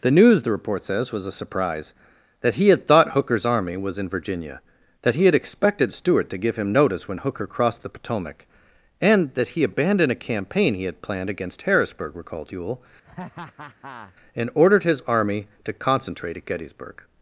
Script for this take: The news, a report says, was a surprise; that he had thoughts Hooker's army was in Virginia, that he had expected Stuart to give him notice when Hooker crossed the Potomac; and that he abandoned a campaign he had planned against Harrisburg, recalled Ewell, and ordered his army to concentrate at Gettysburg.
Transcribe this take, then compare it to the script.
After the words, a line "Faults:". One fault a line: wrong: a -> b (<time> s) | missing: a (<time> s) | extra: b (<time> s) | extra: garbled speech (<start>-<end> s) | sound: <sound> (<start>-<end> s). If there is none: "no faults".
The news, the report says, was a surprise; that he had thought Hooker's army was in Virginia, that he had expected Stuart to give him notice when Hooker crossed the Potomac; and that he abandoned a campaign he had planned against Harrisburg, recalled Ewell, and ordered his army to concentrate at Gettysburg.
Faults:
wrong: a -> the (0.4 s)
wrong: thoughts -> thought (2.9 s)
sound: laugh (13.0-14.2 s)